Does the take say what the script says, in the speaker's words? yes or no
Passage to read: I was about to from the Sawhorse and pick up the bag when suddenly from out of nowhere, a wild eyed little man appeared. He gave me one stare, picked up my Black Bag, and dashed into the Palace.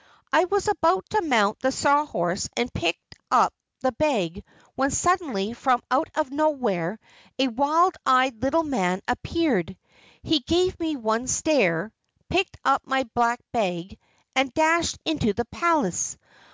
no